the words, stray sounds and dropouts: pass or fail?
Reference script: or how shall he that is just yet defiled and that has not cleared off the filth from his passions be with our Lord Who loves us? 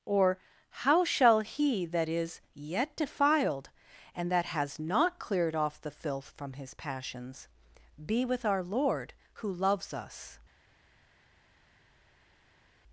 fail